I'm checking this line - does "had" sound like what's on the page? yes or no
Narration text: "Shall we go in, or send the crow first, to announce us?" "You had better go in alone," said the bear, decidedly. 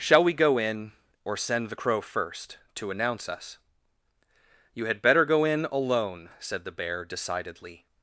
yes